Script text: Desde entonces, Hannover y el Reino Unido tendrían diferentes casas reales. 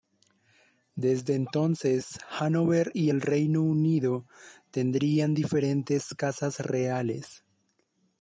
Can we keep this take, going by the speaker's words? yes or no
yes